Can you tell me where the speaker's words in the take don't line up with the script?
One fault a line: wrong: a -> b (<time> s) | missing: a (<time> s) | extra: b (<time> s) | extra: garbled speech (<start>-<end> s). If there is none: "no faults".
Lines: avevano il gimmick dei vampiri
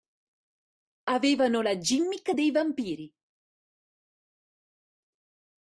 wrong: il -> la (1.6 s)